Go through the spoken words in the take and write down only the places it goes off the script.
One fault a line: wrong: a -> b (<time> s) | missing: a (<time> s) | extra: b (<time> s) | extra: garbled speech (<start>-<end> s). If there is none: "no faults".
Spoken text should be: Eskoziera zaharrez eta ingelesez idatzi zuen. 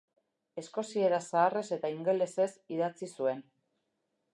no faults